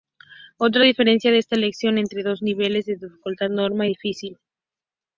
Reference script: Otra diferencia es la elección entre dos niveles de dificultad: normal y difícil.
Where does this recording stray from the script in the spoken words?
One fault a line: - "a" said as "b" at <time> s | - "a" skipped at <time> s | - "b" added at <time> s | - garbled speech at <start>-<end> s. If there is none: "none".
none